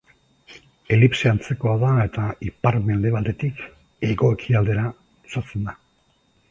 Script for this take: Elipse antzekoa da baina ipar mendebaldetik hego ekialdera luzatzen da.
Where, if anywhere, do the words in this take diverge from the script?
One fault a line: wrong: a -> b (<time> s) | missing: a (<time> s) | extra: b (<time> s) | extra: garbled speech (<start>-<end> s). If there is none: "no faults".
wrong: baina -> eta (2.0 s)